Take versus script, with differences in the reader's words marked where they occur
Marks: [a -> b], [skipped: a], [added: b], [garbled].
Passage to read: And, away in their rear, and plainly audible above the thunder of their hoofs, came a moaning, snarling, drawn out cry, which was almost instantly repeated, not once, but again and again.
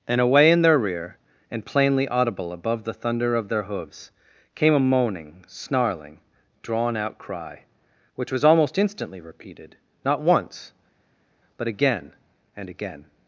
And, away in their rear, and plainly audible above the thunder of their hoofs, came a moaning, snarling, drawn out cry, which was almost instantly repeated, not once, but again and again.